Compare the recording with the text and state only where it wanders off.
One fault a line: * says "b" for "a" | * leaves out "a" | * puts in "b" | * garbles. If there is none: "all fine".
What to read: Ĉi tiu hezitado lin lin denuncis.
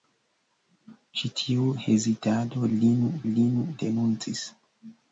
all fine